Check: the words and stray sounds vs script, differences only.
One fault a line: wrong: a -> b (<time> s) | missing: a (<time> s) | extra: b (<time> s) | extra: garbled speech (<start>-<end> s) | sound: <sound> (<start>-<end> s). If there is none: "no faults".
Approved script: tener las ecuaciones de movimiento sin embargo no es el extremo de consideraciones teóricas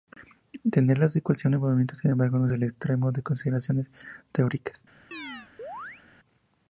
sound: chirp (5.1-6.0 s)